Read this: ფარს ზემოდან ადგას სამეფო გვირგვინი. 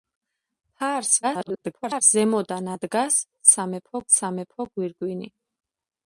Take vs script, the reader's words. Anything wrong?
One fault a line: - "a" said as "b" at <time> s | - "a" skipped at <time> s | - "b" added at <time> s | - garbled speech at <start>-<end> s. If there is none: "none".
- garbled speech at 1.2-2.0 s
- "სამეფო" added at 4.2 s